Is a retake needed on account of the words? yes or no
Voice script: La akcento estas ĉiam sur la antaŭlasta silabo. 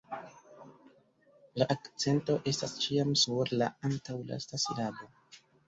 no